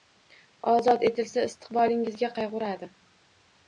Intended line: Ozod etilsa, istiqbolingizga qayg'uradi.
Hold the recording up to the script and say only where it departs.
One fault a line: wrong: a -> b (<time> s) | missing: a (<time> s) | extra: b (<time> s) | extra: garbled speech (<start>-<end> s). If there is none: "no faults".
no faults